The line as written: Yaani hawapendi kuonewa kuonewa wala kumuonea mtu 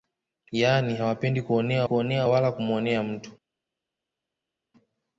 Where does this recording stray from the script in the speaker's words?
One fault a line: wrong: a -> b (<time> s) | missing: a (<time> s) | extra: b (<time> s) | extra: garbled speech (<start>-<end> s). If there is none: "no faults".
no faults